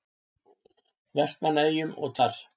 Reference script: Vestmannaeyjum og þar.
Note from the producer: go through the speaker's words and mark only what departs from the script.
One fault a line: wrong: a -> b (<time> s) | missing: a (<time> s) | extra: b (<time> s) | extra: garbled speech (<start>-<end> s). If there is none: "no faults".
no faults